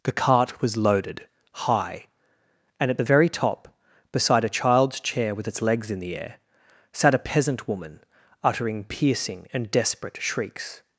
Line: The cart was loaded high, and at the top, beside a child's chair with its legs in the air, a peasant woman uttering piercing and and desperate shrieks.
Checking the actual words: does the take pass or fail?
fail